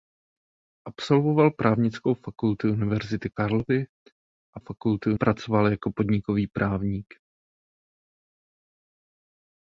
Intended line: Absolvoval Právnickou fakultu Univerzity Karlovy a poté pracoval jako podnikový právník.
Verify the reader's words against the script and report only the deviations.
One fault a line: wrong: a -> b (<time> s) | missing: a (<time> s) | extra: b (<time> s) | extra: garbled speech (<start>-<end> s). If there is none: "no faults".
wrong: poté -> fakultu (4.6 s)